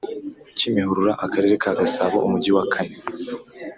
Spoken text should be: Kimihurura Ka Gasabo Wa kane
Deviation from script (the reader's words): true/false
true